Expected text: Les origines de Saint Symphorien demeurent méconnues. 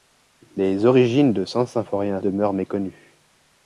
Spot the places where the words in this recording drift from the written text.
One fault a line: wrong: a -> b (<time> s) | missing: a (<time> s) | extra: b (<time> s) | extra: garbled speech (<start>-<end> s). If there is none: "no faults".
no faults